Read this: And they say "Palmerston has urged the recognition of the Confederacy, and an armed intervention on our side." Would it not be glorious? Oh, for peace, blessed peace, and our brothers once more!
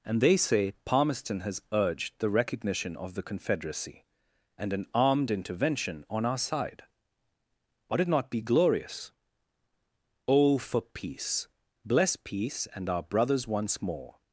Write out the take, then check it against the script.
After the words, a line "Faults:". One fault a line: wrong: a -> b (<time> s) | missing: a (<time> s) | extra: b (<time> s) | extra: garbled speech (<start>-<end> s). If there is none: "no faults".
And they say "Palmerston has urged the recognition of the Confederacy, and an armed intervention on our side." Would it not be glorious? Oh, for peace, bless peace, and our brothers once more!
Faults:
wrong: blessed -> bless (11.8 s)